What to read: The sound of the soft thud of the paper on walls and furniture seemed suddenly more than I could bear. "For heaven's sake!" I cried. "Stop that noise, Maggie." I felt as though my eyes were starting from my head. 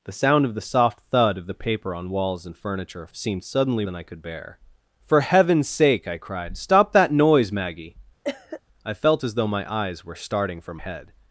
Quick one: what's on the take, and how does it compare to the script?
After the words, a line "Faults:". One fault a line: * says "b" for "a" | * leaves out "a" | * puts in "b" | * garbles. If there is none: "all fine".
The sound of the soft thud of the paper on walls and furniture seemed suddenly than I could bear. "For heaven's sake!" I cried. "Stop that noise, Maggie." I felt as though my eyes were starting from head.
Faults:
* leaves out "more"
* leaves out "my"